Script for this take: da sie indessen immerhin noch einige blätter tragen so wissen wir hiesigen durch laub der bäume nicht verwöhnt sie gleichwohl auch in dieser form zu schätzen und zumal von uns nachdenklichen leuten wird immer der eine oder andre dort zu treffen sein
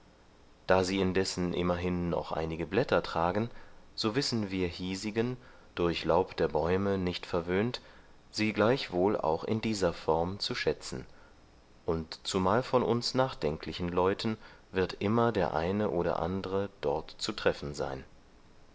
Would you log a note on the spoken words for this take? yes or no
no